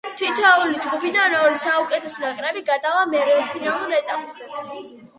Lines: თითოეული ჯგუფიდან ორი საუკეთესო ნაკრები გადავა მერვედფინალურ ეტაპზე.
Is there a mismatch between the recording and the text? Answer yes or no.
no